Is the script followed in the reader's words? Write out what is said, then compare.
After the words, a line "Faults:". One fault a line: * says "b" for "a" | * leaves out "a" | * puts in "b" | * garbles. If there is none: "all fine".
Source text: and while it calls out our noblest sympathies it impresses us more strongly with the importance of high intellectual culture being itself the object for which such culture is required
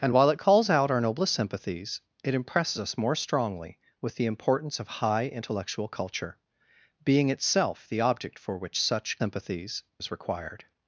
and while it calls out our noblest sympathies it impresses us more strongly with the importance of high intellectual culture being itself the object for which such sympathies is required
Faults:
* says "sympathies" for "culture"